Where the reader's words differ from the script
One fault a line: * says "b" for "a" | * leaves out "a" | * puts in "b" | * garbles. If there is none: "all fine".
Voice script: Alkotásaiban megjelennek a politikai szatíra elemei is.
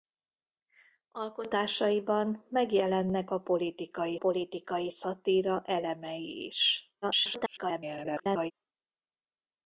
* puts in "politikai"
* garbles